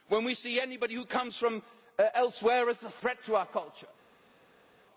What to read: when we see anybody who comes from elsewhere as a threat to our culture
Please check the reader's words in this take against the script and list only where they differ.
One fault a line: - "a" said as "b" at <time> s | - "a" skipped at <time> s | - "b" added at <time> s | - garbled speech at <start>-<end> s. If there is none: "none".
none